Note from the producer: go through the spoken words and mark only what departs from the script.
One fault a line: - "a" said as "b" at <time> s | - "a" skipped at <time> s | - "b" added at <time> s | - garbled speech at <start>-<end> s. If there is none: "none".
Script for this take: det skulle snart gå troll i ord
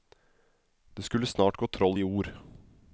none